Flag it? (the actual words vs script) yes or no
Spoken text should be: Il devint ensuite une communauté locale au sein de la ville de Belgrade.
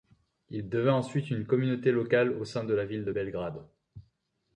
no